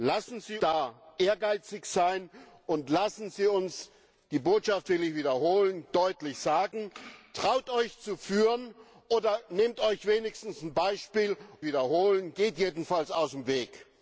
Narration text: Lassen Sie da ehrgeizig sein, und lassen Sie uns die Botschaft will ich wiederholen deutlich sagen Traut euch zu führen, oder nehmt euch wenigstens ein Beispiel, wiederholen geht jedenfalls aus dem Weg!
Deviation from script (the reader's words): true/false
false